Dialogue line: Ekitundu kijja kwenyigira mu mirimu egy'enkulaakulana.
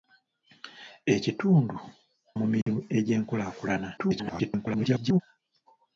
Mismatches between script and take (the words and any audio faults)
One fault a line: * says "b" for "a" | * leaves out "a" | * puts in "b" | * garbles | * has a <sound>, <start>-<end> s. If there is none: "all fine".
* leaves out "kijja kwenyigira"
* has a dropout, 2.6-2.7 s
* garbles